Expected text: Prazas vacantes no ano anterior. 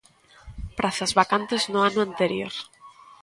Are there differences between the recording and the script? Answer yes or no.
no